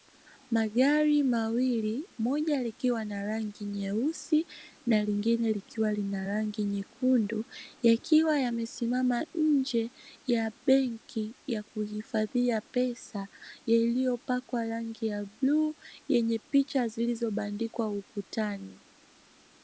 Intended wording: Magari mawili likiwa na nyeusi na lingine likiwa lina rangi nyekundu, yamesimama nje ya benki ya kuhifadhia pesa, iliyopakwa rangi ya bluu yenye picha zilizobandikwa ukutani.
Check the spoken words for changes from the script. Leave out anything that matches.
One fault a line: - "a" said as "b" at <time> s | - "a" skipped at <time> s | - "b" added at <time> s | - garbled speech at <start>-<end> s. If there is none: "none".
- "moja" added at 2.2 s
- "rangi" added at 3.2 s
- "yakiwa" added at 7.8 s